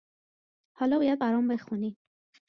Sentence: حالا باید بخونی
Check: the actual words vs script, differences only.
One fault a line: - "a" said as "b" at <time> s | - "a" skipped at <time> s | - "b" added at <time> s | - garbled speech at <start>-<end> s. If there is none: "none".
- "برام" added at 1.2 s